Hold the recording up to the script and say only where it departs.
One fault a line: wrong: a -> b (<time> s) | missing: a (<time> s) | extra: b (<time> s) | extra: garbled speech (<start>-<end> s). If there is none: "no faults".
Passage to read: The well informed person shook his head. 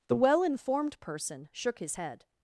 no faults